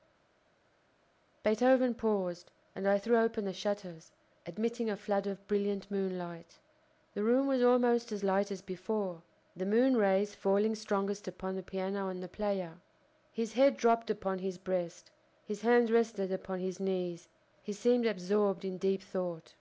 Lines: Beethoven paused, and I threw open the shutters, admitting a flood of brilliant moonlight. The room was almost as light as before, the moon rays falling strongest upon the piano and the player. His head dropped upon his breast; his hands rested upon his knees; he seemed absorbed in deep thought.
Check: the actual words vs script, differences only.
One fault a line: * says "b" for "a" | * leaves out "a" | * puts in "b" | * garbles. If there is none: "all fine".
all fine